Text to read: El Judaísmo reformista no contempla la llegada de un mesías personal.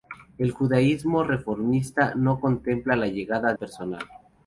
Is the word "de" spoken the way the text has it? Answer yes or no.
no